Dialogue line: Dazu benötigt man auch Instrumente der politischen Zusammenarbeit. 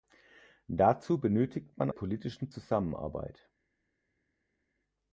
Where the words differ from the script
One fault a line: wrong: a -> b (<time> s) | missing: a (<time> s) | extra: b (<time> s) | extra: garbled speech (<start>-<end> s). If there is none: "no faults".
missing: auch Instrumente der (1.9 s)